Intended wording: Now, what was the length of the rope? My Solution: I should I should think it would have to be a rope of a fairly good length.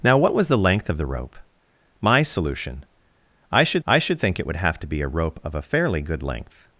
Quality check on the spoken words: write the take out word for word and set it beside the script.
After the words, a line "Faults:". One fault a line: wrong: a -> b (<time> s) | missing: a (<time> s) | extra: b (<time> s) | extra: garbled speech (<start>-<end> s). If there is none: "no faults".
Now, what was the length of the rope? My Solution: I should I should think it would have to be a rope of a fairly good length.
Faults:
no faults